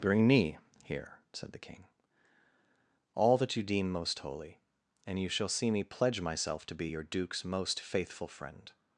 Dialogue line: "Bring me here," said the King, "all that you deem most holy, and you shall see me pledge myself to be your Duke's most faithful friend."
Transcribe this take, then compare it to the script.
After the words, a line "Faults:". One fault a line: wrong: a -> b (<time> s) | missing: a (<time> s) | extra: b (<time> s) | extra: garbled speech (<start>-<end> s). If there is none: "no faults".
"Bring me here," said the King, "all that you deem most holy, and you shall see me pledge myself to be your Duke's most faithful friend."
Faults:
no faults